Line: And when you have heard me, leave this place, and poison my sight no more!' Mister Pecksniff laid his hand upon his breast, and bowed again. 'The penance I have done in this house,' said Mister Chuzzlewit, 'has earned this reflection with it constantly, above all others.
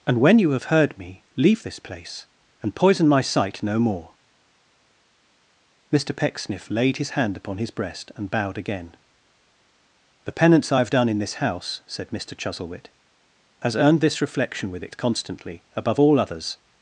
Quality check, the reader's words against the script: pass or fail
pass